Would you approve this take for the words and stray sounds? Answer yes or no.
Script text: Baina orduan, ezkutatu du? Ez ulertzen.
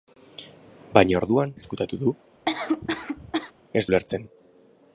no